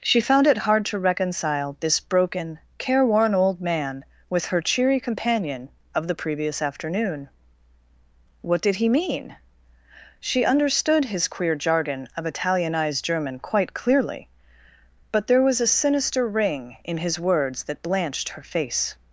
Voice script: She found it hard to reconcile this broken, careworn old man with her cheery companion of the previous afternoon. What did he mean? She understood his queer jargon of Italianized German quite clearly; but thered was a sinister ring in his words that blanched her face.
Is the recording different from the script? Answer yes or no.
yes